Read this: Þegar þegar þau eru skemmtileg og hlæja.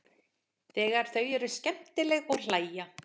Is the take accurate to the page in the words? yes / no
no